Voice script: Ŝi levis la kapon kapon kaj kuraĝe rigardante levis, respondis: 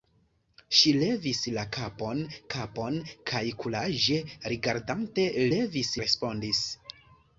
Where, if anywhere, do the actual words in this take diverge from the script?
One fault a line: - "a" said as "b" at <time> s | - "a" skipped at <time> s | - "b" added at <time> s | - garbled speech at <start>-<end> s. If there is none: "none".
none